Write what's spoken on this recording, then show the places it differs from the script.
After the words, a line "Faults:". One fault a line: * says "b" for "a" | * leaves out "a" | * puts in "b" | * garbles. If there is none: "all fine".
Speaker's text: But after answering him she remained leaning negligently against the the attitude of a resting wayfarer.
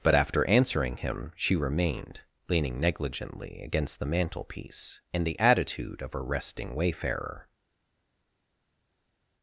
But after answering him she remained leaning negligently against the mantelpiece in the attitude of a resting wayfarer.
Faults:
* puts in "mantelpiece in"